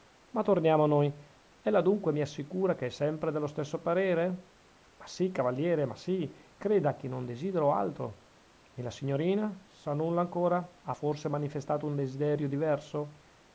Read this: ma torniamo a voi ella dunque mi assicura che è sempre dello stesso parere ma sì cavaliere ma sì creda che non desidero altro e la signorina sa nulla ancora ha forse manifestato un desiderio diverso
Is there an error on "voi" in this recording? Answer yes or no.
yes